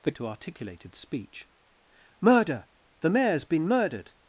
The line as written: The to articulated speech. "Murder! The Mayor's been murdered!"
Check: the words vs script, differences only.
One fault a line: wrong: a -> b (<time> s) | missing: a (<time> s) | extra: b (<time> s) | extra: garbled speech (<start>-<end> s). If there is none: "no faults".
no faults